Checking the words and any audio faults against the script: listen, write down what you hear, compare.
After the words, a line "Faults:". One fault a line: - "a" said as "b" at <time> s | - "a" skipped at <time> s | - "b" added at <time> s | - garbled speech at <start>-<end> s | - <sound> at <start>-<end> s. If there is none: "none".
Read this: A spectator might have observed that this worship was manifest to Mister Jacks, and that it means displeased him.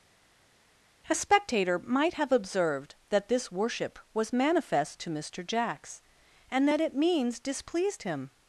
A spectator might have observed that this worship was manifest to Mister Jacks, and that it means displeased him.
Faults:
none